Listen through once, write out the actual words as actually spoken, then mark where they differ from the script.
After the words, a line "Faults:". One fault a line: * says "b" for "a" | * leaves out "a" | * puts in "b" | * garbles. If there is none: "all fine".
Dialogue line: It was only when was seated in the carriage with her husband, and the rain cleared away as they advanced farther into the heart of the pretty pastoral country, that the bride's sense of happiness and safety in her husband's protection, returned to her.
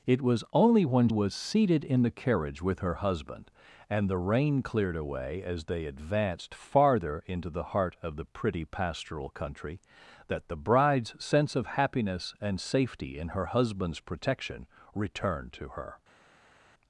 It was only when was seated in the carriage with her husband, and the rain cleared away as they advanced farther into the heart of the pretty pastoral country, that the bride's sense of happiness and safety in her husband's protection, returned to her.
Faults:
all fine